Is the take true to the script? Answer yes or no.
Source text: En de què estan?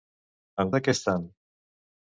yes